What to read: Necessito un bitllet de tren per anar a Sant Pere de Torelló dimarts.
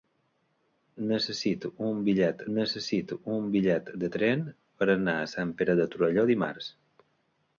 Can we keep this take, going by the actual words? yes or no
no